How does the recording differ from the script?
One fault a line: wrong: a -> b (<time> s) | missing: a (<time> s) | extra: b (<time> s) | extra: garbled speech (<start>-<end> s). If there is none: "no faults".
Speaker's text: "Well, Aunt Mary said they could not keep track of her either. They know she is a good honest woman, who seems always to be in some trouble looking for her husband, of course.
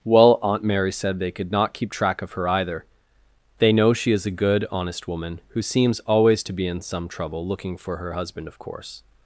no faults